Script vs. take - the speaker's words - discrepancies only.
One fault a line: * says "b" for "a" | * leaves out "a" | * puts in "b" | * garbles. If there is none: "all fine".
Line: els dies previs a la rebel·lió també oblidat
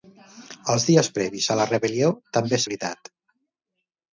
all fine